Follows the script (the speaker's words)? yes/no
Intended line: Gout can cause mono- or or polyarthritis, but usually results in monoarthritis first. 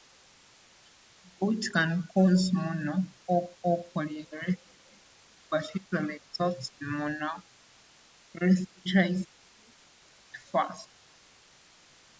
yes